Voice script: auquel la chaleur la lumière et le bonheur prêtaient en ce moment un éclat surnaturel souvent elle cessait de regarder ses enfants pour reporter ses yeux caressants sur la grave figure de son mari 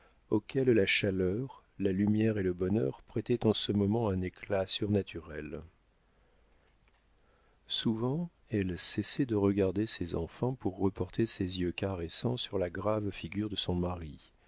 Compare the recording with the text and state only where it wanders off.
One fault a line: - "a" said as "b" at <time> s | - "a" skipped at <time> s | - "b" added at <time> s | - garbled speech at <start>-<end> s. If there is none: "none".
none